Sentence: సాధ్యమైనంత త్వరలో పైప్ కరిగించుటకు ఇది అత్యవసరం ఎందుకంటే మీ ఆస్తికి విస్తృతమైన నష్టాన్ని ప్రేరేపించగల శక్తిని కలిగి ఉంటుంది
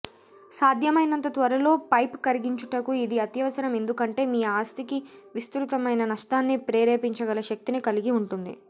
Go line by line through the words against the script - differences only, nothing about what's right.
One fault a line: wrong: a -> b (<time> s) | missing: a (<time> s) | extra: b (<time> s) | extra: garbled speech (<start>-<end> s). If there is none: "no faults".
no faults